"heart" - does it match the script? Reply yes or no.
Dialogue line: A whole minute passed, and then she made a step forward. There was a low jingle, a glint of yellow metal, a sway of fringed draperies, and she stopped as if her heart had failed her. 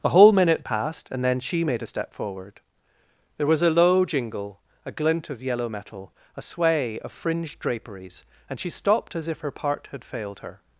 no